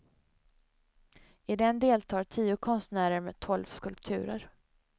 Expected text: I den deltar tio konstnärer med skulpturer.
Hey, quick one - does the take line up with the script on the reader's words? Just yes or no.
no